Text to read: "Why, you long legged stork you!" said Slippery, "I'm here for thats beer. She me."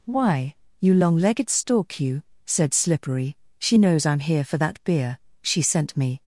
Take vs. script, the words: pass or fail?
fail